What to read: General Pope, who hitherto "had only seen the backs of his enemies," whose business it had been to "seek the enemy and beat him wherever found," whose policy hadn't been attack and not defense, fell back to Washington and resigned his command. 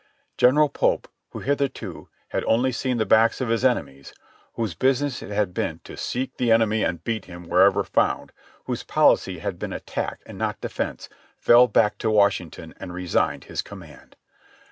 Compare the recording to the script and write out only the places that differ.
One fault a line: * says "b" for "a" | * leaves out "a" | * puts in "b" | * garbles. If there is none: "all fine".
* says "had" for "hadn't"